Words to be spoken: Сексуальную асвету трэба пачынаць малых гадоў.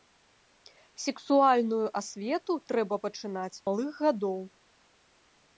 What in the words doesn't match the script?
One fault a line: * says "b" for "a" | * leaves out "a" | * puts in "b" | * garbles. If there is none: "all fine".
all fine